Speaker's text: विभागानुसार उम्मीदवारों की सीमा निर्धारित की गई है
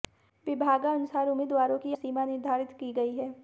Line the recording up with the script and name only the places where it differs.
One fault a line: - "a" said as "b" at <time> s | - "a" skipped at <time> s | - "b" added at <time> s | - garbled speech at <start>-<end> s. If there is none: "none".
none